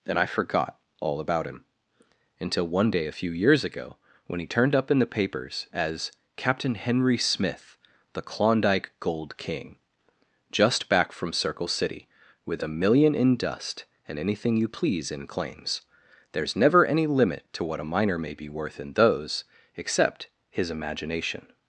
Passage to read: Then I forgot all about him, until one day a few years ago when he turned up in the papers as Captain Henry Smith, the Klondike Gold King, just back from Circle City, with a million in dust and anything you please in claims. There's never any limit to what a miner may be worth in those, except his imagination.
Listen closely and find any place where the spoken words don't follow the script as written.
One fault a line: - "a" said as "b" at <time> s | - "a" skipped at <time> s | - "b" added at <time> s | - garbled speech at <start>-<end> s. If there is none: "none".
- "Then" said as "And" at 0.1 s